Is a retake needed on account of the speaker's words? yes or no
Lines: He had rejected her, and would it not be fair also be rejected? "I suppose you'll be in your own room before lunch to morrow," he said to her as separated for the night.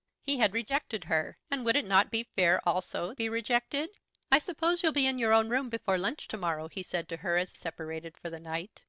no